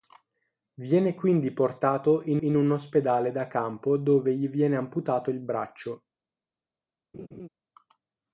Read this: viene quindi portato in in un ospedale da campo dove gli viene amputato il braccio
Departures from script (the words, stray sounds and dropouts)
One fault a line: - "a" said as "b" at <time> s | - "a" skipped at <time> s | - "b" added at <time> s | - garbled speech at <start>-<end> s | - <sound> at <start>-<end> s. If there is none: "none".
- laugh at 7.1-7.5 s